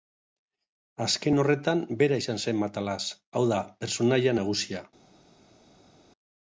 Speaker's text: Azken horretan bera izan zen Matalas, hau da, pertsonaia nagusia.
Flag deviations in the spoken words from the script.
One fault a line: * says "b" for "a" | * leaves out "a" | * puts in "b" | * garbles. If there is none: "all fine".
all fine